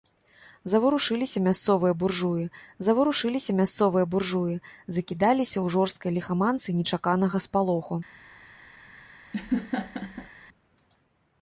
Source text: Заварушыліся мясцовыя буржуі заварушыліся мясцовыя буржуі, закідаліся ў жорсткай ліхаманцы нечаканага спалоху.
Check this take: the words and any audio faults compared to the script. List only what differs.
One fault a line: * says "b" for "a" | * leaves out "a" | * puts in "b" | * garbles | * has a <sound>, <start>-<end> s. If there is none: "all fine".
* has a laugh, 9.3-10.3 s